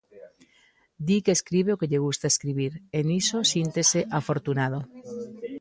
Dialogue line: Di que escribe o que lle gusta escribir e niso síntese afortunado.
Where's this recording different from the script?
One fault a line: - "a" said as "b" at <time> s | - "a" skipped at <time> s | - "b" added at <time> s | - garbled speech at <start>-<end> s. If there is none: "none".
none